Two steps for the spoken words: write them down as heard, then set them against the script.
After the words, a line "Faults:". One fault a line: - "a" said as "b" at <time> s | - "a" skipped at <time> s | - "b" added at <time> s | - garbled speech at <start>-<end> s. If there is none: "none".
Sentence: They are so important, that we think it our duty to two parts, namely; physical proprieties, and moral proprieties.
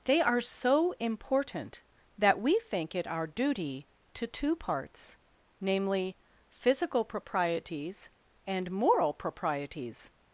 They are so important, that we think it our duty to two parts, namely; physical proprieties, and moral proprieties.
Faults:
none